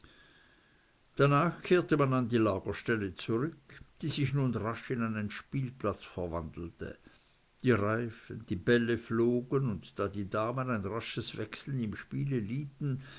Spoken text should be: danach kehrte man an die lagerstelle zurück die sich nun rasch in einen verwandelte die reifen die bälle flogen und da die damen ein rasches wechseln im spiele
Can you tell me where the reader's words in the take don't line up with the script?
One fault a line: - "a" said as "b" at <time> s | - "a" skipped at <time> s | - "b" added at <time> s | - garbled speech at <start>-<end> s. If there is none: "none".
- "spielplatz" added at 5.3 s